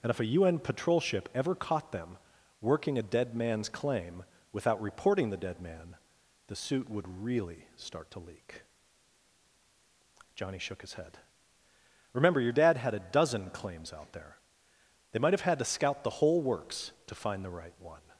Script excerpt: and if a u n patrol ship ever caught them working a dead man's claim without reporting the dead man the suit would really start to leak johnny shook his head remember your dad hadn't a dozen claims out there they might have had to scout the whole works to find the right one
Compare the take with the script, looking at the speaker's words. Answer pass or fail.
fail